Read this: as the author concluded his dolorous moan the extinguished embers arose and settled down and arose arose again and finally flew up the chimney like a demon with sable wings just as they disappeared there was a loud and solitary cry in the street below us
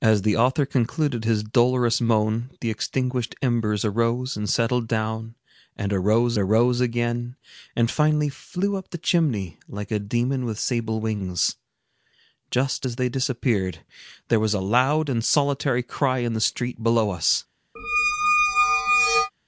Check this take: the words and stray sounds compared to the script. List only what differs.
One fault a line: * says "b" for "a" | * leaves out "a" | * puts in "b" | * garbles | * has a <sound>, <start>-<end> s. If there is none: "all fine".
* has a squeak, 17.8-19.3 s